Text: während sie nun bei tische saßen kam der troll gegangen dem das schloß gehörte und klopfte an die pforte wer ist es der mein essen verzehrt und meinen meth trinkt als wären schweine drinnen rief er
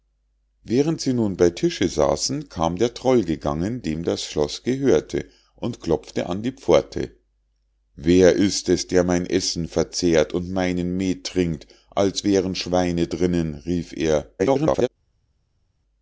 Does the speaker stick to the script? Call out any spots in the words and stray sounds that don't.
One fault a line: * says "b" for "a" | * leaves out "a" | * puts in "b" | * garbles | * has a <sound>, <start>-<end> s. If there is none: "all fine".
* garbles